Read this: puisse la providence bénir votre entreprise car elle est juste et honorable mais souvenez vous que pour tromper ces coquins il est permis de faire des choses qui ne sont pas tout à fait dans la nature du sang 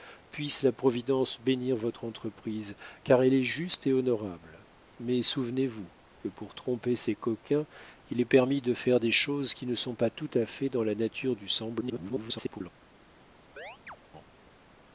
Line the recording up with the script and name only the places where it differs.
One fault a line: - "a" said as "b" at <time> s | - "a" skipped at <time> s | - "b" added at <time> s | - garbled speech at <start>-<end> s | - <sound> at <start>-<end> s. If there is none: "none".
- garbled speech at 11.8-12.6 s
- chirp at 13.6-14.0 s